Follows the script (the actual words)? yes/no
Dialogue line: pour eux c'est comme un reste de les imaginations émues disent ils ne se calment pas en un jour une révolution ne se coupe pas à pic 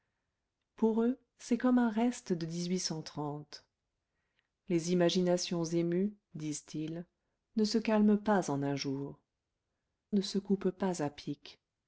no